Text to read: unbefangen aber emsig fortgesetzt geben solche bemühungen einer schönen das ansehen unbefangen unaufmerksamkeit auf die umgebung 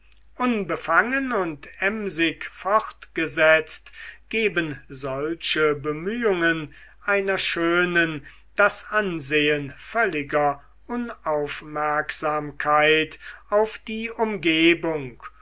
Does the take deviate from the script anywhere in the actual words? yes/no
yes